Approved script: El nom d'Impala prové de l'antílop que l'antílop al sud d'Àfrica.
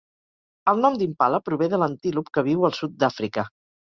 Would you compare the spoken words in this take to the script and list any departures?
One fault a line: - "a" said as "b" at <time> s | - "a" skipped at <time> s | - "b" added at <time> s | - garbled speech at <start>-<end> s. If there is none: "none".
- "l'antílop" said as "viu" at 2.5 s